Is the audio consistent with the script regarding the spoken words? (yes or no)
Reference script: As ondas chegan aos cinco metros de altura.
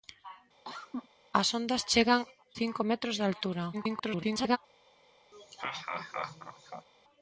no